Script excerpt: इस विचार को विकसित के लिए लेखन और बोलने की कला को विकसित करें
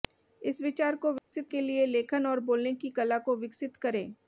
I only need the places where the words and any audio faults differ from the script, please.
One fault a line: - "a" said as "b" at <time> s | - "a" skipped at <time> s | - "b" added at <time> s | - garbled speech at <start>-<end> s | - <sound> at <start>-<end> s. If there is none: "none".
- dropout at 1.2-1.3 s